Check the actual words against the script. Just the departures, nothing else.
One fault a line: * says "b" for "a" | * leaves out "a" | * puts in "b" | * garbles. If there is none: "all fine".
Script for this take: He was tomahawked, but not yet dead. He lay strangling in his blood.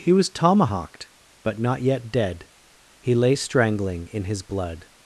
all fine